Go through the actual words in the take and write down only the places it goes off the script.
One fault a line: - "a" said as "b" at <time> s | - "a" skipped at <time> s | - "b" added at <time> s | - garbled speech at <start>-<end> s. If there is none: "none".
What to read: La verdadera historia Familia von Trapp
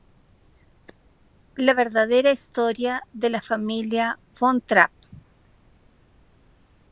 - "de la" added at 3.1 s